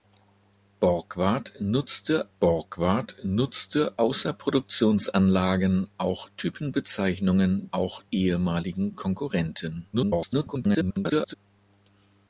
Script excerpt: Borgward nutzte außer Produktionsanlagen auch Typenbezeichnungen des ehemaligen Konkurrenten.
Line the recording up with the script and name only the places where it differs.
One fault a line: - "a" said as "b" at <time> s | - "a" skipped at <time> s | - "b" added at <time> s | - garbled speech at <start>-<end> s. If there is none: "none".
- "borgward nutzte" added at 2.4 s
- "des" said as "auch" at 7.7 s
- garbled speech at 9.9-11.3 s